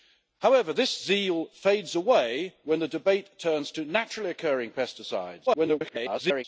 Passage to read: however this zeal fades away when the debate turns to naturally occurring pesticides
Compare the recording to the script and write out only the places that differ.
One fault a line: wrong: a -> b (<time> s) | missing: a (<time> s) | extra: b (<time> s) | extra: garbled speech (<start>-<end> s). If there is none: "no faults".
extra: garbled speech (5.5-6.4 s)